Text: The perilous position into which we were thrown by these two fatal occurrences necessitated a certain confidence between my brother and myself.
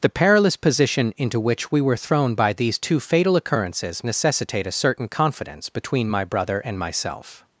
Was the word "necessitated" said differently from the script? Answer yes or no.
yes